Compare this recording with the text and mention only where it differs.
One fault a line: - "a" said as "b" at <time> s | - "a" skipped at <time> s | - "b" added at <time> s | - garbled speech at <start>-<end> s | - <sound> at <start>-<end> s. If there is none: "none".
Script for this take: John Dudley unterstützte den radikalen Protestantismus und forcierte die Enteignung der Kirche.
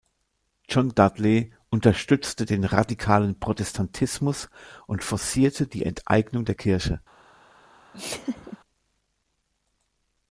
- laugh at 7.9-8.6 s